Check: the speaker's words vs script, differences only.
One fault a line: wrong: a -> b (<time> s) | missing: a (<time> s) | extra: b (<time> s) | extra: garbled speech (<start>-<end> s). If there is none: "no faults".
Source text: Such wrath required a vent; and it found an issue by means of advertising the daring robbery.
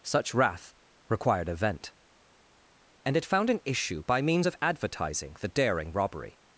no faults